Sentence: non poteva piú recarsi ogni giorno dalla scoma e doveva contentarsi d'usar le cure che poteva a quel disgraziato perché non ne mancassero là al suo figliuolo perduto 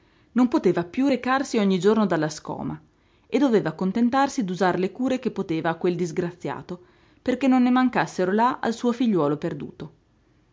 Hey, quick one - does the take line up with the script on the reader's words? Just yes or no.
yes